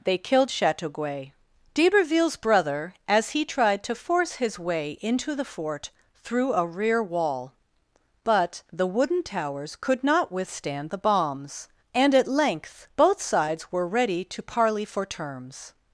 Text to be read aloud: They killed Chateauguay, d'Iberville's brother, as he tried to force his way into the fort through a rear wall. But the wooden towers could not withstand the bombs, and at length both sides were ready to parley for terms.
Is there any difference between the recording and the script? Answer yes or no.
no